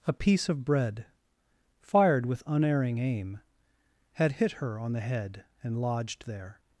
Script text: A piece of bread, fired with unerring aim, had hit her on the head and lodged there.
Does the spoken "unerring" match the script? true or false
true